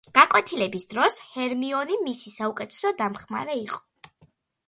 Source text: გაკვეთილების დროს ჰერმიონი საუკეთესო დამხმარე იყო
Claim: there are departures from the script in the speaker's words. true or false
true